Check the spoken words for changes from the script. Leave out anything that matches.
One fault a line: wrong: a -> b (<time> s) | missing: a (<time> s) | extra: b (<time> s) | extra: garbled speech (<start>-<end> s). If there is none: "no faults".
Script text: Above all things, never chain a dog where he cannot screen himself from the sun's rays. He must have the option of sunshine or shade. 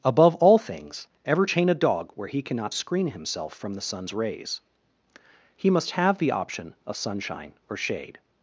wrong: never -> ever (1.2 s)